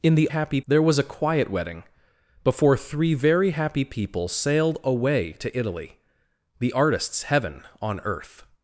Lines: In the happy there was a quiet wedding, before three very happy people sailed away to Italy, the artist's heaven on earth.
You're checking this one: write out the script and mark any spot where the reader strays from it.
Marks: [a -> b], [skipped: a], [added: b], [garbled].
In the happy there was a quiet wedding, before three very happy people sailed away to Italy, the artist's heaven on earth.